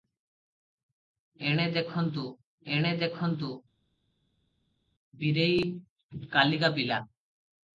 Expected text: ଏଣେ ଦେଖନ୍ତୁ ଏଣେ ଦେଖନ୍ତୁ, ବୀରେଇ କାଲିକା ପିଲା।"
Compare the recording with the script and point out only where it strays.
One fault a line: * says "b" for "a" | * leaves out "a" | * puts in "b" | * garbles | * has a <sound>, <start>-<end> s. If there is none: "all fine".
all fine